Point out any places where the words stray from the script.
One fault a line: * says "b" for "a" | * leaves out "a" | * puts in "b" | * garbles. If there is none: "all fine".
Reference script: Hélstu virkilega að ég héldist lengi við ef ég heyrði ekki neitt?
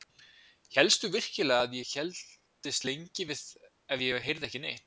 all fine